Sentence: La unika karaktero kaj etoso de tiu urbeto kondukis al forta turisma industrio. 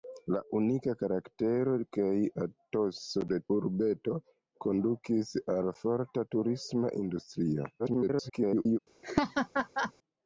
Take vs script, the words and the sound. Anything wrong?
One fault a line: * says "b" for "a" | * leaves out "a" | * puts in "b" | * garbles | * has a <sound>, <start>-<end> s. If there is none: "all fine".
* leaves out "tiu"
* garbles
* has a laugh, 9.0-9.9 s